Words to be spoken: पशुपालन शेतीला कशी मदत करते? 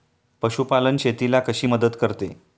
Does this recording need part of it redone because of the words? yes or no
no